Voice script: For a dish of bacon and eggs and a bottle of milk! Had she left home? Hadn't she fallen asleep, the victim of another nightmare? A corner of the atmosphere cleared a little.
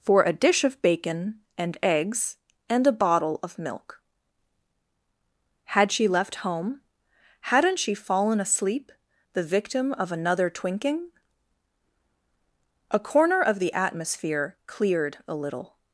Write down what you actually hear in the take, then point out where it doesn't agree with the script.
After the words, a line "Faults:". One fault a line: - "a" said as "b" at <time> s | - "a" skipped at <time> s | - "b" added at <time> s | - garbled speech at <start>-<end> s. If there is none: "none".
For a dish of bacon and eggs and a bottle of milk! Had she left home? Hadn't she fallen asleep, the victim of another twinking? A corner of the atmosphere cleared a little.
Faults:
- "nightmare" said as "twinking" at 10.5 s